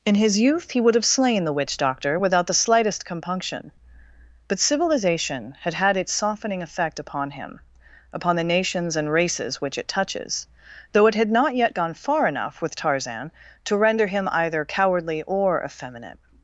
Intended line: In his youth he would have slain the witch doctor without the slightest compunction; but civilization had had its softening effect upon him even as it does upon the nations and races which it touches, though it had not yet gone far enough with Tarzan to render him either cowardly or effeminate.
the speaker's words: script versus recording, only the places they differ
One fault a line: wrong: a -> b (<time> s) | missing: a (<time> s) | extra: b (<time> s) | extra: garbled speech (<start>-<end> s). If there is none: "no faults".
missing: even as it does (7.6 s)